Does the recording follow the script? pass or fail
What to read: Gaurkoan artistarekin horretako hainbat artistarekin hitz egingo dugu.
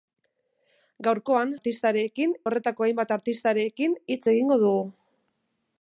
pass